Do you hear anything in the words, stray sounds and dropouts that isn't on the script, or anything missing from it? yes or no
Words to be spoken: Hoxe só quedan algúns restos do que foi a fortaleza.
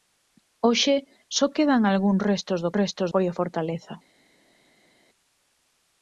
yes